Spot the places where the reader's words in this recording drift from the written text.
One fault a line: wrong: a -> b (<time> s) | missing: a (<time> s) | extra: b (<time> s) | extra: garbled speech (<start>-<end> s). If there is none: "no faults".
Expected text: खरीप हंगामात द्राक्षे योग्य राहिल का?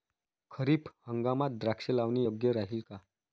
extra: लावणे (1.9 s)